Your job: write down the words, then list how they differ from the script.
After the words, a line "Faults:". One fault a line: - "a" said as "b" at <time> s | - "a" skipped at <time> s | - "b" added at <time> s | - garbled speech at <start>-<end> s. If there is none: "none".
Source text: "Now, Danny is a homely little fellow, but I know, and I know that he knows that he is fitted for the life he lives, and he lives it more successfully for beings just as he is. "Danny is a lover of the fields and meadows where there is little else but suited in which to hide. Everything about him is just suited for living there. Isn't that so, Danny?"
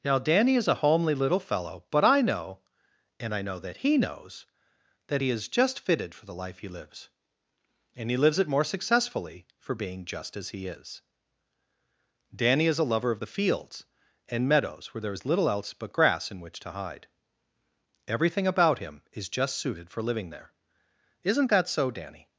"Now, Danny is a homely little fellow, but I know, and I know that he knows that he is just fitted for the life he lives, and he lives it more successfully for being just as he is. "Danny is a lover of the fields and meadows where there is little else but grass in which to hide. Everything about him is just suited for living there. Isn't that so, Danny?"
Faults:
- "just" added at 5.5 s
- "beings" said as "being" at 9.7 s
- "suited" said as "grass" at 15.9 s